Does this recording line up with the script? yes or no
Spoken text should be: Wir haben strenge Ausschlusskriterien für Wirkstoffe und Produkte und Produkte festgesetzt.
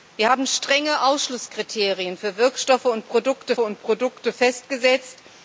yes